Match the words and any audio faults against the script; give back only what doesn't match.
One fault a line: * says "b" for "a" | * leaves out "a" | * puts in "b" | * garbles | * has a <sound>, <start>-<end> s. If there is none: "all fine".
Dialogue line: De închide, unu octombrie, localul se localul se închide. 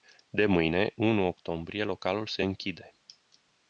* says "mâine" for "închide"
* leaves out "localul se"